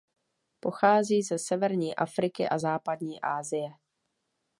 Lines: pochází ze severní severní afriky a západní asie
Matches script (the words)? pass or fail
fail